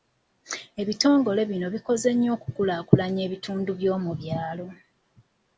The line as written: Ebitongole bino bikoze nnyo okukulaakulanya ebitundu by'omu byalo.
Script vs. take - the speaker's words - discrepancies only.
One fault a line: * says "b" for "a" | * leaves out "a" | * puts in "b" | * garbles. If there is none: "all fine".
all fine